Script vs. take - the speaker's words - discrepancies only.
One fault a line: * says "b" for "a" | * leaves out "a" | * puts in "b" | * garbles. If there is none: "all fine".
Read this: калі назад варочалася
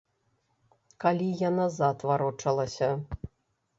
* puts in "я"